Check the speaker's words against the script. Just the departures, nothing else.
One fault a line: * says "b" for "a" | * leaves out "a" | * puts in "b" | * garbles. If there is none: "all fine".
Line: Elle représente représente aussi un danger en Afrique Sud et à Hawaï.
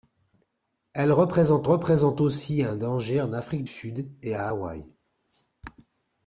all fine